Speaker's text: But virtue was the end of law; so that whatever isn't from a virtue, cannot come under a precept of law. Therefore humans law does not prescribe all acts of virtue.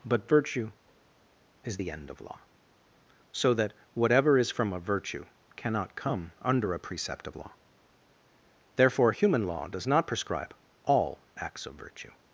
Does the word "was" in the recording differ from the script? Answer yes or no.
yes